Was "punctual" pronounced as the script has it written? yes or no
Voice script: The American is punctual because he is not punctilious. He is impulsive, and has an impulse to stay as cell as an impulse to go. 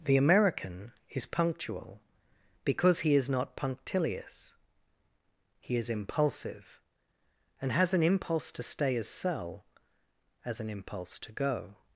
yes